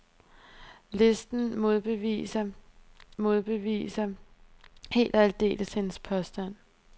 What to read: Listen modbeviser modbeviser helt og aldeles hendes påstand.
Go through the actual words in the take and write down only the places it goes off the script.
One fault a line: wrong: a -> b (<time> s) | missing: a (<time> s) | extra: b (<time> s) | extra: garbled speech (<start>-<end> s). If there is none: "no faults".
no faults